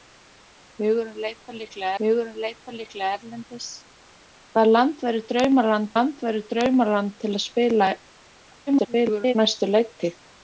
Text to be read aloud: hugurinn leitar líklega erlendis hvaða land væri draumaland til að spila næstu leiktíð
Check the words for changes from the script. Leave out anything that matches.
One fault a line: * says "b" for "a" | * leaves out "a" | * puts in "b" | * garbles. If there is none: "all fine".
* puts in "hugurinn leitar líklega"
* puts in "land væri draumaland"
* garbles